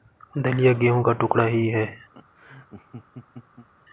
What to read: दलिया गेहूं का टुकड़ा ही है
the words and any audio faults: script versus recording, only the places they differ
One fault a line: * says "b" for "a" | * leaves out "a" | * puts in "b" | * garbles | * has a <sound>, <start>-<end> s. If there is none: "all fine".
* has a laugh, 2.1-3.7 s